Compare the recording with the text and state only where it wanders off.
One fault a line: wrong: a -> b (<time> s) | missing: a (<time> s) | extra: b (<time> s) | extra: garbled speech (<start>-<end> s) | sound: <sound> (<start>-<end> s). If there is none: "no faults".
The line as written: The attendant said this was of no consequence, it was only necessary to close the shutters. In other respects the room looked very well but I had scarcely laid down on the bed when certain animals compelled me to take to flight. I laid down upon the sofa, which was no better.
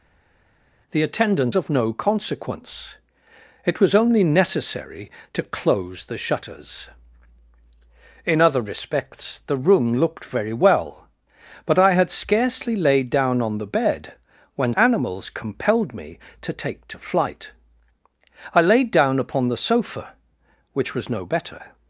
missing: said this was (1.5 s)
missing: certain (14.7 s)